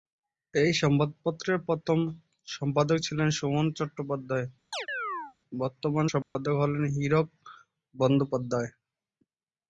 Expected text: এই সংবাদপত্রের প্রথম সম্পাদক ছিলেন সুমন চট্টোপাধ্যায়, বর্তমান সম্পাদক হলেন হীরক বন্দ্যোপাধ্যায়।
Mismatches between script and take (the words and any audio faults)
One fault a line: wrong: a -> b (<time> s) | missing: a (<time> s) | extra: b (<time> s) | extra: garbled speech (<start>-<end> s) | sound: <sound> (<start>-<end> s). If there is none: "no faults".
sound: chirp (4.7-5.3 s)
sound: dropout (6.2-6.4 s)